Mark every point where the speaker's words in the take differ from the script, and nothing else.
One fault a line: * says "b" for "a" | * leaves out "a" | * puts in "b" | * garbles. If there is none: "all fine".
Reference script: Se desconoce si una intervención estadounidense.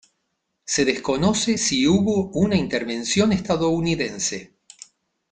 * puts in "hubo"